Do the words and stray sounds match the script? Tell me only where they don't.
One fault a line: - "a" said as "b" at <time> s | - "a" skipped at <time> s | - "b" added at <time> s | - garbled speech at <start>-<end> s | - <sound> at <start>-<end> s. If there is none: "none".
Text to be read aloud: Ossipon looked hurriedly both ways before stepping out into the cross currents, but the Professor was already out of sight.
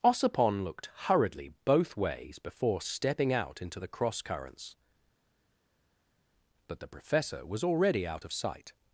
none